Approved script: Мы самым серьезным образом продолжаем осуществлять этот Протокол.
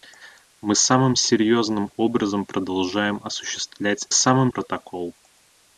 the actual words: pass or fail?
fail